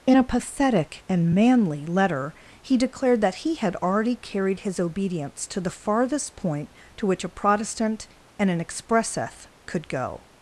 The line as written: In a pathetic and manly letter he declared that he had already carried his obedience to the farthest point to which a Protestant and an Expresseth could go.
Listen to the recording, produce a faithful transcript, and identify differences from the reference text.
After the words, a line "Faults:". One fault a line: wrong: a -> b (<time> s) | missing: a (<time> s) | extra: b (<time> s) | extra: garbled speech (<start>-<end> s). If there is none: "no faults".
In a pathetic and manly letter he declared that he had already carried his obedience to the farthest point to which a Protestant and an Expresseth could go.
Faults:
no faults